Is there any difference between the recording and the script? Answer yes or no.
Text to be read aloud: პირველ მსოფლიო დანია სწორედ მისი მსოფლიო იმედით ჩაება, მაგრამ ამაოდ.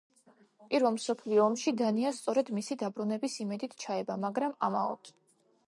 yes